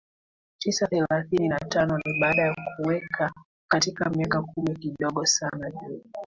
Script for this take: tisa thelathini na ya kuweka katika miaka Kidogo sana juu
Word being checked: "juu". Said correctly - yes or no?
yes